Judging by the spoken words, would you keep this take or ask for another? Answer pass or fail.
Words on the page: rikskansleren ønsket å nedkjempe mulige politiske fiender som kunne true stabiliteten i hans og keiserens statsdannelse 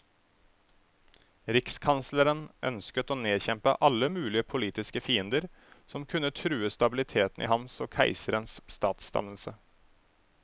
fail